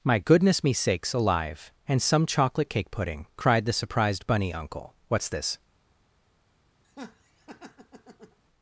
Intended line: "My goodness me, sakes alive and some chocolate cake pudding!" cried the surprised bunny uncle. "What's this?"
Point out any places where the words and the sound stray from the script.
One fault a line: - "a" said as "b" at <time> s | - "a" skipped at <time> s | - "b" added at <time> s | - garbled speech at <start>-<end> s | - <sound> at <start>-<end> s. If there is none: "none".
- laugh at 6.8-8.4 s